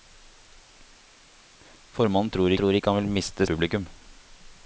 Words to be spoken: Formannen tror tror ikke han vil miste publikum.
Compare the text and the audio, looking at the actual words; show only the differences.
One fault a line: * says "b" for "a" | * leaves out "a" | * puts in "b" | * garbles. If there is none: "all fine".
all fine